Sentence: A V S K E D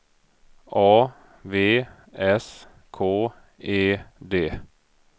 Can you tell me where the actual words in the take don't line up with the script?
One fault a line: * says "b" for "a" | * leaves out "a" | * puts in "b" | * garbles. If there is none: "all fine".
all fine